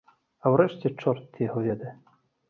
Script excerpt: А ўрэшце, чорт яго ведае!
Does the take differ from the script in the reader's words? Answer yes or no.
no